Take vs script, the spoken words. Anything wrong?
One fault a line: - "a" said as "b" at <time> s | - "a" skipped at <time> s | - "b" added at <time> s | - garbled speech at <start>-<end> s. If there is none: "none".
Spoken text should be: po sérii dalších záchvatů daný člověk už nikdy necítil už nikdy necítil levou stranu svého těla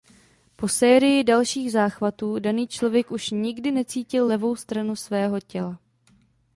- "už nikdy necítil" skipped at 4.3 s